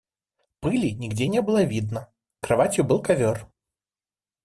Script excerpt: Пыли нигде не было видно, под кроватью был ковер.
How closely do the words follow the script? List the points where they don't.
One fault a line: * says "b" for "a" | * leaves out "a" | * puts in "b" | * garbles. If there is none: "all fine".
* leaves out "под"